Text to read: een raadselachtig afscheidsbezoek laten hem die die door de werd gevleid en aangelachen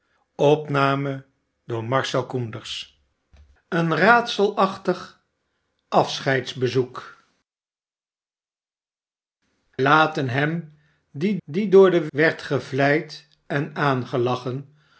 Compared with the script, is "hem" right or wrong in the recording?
right